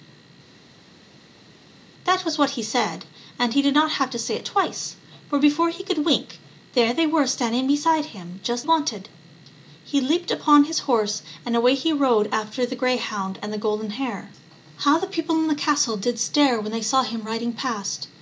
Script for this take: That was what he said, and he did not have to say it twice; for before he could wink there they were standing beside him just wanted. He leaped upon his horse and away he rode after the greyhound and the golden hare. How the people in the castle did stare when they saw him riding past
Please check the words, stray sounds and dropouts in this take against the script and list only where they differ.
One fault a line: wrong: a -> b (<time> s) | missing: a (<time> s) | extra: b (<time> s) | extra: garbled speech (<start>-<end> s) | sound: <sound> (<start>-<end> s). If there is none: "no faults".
no faults